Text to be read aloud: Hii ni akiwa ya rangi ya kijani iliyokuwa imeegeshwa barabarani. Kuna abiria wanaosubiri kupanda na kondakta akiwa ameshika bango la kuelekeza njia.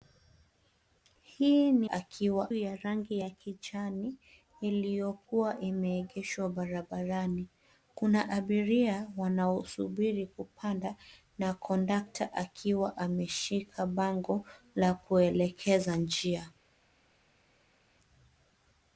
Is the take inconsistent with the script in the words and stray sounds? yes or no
no